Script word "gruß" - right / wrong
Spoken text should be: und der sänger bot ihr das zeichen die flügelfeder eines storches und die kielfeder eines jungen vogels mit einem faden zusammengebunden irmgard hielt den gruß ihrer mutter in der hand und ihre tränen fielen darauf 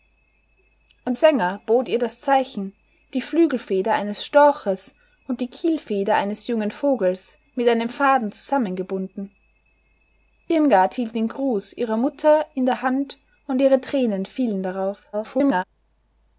right